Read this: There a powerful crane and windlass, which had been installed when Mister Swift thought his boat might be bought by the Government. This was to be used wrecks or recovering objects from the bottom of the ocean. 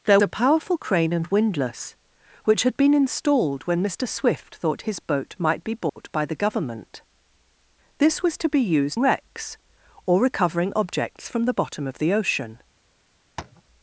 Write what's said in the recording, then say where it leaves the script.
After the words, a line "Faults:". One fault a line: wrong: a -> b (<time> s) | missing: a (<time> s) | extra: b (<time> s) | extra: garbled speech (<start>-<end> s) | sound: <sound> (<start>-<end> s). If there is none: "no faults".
There a powerful crane and windlass, which had been installed when Mister Swift thought his boat might be bought by the Government. This was to be used wrecks or recovering objects from the bottom of the ocean.
Faults:
sound: dropout (5.9-6.0 s)
sound: tap (13.4-13.6 s)